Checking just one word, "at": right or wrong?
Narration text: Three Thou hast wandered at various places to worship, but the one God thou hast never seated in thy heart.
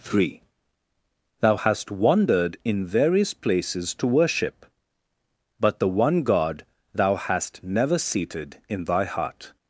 wrong